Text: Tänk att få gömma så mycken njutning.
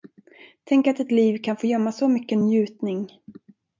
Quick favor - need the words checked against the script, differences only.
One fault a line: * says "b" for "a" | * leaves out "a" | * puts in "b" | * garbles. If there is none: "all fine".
* puts in "ett liv kan"